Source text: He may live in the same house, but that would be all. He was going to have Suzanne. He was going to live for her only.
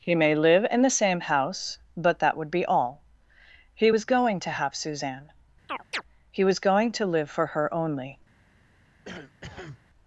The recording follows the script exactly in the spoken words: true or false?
true